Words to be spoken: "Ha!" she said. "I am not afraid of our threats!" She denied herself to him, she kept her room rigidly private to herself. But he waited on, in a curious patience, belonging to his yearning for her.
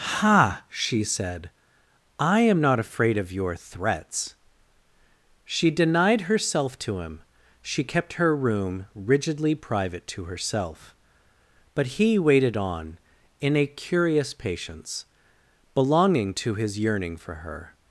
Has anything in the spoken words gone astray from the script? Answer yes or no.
yes